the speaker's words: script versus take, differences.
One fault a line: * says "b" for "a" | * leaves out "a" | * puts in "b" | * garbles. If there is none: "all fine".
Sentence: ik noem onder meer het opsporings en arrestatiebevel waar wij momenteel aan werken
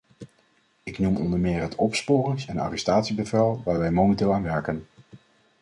all fine